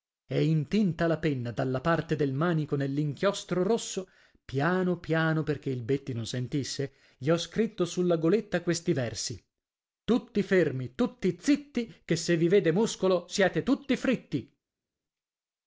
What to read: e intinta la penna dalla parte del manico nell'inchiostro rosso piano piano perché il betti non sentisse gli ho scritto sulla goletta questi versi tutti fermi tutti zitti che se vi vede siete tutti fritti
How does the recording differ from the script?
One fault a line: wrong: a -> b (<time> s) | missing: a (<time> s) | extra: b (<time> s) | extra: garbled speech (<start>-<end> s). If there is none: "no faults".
extra: muscolo (12.7 s)